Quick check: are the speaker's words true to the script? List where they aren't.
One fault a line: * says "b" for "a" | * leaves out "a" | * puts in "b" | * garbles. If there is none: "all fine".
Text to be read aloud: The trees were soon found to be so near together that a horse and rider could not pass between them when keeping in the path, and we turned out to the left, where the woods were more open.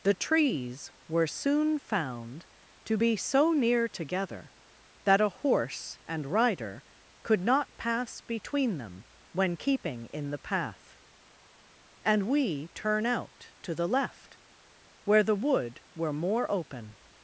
* says "turn" for "turned"
* says "wood" for "woods"